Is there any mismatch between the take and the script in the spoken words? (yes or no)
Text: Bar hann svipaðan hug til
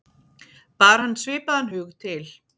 no